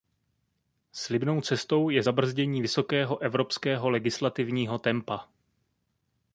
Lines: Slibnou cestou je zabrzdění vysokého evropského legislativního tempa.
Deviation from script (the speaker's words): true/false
false